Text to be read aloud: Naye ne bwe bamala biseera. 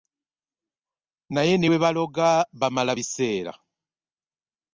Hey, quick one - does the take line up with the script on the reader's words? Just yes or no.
no